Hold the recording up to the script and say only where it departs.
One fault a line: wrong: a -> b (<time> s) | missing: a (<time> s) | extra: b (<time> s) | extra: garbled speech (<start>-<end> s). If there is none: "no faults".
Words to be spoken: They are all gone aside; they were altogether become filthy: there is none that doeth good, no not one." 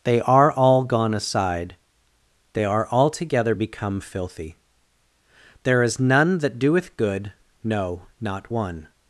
wrong: were -> are (2.6 s)